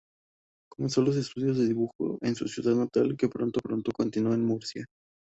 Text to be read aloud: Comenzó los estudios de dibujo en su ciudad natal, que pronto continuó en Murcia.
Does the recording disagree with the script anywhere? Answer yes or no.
yes